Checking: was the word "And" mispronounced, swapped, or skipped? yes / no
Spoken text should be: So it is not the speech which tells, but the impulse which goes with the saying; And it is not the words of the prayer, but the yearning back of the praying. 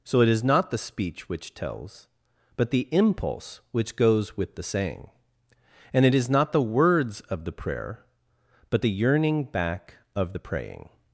no